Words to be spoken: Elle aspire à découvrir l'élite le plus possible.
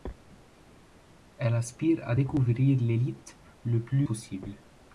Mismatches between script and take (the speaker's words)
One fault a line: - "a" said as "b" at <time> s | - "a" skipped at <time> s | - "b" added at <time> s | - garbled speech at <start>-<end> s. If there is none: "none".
none